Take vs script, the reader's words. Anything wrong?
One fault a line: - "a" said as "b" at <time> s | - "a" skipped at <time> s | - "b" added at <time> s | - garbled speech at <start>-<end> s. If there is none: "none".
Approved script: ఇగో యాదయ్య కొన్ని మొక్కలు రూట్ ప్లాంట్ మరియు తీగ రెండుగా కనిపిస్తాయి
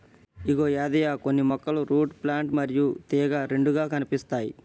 none